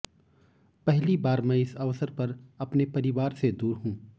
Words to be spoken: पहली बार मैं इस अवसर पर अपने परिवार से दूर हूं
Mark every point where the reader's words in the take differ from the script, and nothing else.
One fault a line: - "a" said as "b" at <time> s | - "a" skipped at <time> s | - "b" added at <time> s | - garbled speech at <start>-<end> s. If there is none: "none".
none